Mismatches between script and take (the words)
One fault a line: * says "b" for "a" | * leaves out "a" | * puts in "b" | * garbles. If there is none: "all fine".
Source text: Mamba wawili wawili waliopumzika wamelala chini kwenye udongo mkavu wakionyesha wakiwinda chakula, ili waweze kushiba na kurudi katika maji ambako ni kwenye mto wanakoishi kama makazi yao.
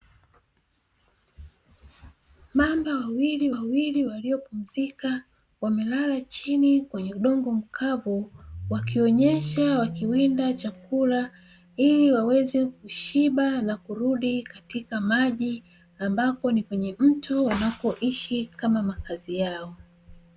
all fine